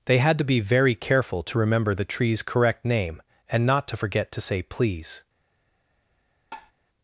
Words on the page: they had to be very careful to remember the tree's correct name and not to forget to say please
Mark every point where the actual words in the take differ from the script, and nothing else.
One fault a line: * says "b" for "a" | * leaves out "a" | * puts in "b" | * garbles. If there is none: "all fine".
all fine